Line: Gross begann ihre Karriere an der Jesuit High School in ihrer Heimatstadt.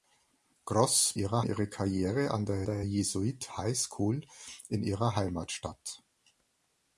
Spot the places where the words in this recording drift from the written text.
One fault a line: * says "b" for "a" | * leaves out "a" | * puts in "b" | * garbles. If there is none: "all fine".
* says "ihrer" for "begann"
* puts in "der"